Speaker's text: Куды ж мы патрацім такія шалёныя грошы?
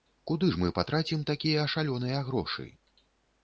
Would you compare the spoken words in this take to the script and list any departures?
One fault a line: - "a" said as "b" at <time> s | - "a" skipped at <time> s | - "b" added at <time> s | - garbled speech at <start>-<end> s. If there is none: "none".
none